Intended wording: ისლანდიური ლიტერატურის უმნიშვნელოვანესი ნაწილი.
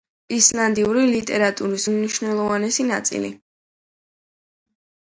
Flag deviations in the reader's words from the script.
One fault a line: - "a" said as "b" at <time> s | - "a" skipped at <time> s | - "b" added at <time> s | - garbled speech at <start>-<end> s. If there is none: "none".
none